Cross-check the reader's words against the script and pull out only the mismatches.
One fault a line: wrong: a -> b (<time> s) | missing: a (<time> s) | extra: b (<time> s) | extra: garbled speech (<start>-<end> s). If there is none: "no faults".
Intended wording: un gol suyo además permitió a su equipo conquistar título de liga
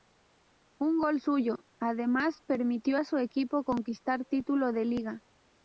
no faults